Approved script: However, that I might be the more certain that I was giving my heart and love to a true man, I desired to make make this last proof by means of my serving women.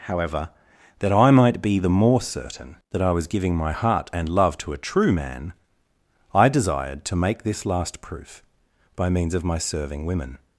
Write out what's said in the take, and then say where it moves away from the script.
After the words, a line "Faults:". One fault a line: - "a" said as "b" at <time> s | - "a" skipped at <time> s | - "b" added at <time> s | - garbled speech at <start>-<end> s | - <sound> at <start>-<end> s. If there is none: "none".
However, that I might be the more certain that I was giving my heart and love to a true man, I desired to make this last proof by means of my serving women.
Faults:
- "make" skipped at 7.4 s